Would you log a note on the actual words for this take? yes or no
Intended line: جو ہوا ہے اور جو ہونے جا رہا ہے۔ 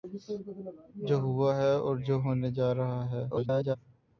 yes